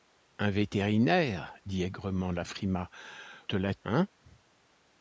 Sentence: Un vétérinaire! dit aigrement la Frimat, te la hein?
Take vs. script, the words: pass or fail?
pass